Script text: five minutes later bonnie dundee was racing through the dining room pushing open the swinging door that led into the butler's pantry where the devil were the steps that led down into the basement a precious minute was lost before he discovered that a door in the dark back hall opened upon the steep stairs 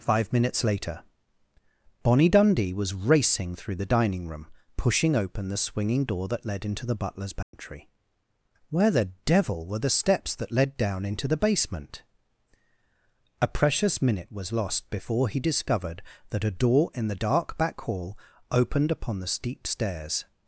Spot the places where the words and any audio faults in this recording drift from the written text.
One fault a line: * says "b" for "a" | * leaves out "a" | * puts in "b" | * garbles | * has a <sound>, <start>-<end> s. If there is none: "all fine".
* has a dropout, 7.4-7.5 s